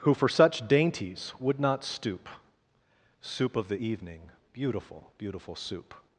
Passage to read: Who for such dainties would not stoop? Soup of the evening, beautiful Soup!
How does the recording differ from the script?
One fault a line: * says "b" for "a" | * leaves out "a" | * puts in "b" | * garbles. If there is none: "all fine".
* puts in "beautiful"